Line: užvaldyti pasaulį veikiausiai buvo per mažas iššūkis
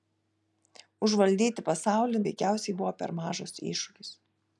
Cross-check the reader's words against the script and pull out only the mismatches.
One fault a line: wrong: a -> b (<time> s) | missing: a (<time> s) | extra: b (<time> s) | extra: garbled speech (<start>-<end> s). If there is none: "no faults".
no faults